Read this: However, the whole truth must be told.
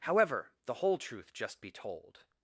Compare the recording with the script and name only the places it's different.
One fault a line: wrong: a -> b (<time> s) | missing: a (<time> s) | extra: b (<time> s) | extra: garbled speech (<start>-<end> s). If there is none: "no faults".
wrong: must -> just (1.3 s)